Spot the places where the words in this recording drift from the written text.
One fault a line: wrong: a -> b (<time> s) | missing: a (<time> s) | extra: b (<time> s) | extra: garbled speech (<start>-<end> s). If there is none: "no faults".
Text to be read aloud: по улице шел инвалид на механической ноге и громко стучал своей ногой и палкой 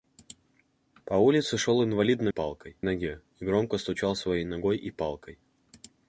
wrong: механической -> палкой (2.3 s)